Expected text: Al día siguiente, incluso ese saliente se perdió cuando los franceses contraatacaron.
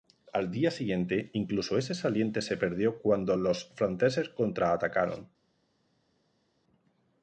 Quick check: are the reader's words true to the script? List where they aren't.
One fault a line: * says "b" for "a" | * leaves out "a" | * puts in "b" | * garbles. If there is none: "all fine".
all fine